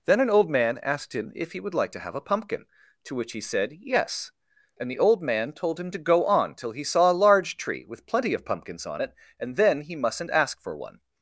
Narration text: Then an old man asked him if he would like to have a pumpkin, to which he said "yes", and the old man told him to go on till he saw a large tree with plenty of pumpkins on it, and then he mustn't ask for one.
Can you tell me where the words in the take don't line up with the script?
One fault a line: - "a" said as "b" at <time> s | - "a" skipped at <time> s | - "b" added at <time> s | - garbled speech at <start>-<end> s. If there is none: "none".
none